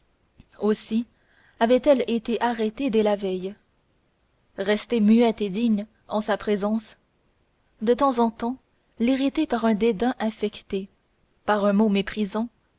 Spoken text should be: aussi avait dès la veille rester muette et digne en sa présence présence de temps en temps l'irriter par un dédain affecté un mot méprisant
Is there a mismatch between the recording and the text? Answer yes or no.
yes